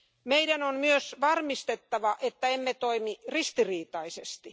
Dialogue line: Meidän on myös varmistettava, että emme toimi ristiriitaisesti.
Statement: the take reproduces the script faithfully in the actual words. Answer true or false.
true